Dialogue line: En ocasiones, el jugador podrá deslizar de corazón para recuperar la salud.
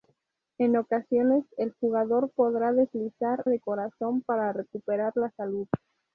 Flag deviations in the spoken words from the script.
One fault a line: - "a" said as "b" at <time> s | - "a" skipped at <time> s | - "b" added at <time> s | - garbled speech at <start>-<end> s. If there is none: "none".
none